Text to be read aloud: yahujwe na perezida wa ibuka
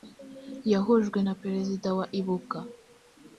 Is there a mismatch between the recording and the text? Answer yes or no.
no